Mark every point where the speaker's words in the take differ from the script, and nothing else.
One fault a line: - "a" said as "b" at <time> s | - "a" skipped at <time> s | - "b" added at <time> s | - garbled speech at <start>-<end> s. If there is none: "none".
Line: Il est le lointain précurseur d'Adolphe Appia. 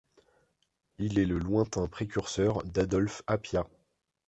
none